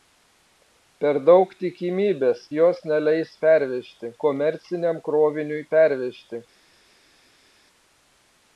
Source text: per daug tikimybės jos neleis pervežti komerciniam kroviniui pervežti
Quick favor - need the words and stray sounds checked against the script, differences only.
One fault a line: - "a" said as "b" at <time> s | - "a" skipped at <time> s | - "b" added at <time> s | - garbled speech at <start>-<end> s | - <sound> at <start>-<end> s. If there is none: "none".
none